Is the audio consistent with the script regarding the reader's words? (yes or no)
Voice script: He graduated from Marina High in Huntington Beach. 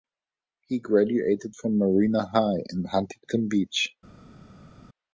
yes